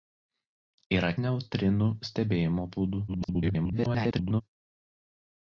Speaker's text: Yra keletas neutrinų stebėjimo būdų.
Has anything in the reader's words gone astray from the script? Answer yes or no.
yes